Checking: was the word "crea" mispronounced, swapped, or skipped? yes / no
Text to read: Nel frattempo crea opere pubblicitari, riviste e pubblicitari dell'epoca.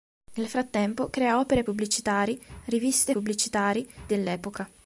no